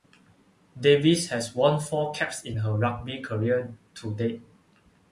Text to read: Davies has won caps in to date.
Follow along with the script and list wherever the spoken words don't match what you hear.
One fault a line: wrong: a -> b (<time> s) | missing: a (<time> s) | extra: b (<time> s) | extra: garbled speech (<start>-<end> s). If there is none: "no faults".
extra: four (1.8 s)
extra: her rugby career (2.5 s)